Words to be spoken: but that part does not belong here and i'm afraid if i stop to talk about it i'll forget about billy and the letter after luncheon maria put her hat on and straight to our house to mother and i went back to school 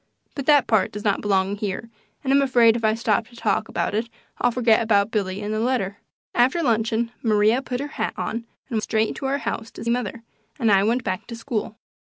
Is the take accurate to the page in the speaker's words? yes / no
yes